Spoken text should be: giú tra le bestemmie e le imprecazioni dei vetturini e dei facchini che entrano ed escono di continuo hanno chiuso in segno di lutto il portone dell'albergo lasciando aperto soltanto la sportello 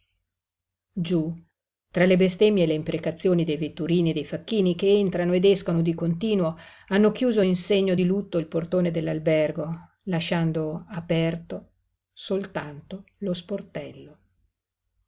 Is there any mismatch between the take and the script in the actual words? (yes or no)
yes